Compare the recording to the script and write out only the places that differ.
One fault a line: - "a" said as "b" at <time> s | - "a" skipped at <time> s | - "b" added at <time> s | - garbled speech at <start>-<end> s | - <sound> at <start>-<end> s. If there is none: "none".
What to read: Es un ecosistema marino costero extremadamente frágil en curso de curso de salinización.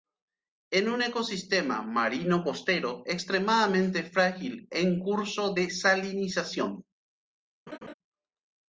- "curso de" skipped at 5.7 s
- laugh at 7.7-7.9 s